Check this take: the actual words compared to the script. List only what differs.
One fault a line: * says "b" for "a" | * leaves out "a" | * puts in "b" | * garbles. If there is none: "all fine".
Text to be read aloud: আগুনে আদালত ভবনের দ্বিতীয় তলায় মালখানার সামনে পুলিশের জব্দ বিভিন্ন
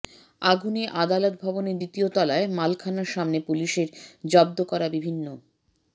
* puts in "করা"